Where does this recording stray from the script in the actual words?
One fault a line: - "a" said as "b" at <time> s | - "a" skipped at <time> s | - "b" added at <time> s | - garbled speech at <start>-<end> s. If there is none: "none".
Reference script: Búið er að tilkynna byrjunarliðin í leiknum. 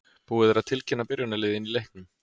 none